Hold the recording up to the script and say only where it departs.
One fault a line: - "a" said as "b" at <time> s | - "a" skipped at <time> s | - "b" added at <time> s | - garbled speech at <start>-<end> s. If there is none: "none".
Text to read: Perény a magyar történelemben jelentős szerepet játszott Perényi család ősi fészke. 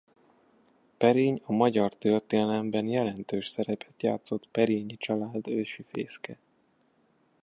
none